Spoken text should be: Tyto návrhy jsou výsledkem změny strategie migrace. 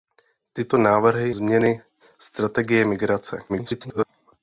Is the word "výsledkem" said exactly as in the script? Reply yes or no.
no